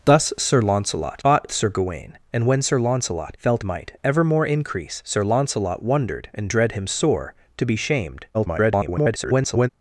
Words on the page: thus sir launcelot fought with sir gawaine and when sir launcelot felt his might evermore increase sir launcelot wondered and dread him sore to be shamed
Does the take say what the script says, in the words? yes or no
no